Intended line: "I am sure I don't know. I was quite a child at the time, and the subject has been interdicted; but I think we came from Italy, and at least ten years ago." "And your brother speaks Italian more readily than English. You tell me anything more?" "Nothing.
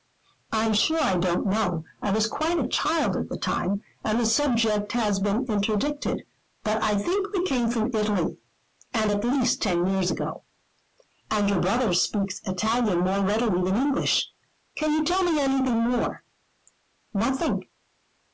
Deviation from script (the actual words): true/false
true